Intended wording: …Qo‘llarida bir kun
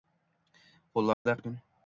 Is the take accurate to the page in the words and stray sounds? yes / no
no